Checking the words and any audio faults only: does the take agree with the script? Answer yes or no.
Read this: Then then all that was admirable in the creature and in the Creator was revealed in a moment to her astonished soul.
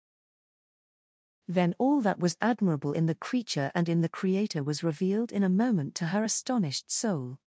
no